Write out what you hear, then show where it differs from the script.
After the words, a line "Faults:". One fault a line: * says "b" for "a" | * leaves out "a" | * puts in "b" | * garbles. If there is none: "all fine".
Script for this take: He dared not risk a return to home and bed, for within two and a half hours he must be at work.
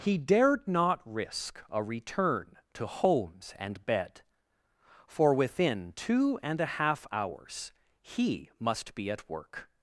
He dared not risk a return to homes and bed, for within two and a half hours he must be at work.
Faults:
* says "homes" for "home"